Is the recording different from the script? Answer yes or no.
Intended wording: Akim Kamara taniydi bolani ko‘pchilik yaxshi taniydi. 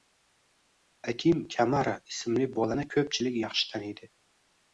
yes